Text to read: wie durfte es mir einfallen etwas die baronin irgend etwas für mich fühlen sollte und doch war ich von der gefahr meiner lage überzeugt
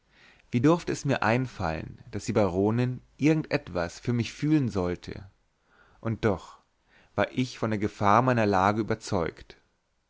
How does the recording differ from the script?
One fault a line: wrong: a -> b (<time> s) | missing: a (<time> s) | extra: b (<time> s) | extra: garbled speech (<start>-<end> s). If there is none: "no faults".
wrong: etwas -> daß (2.1 s)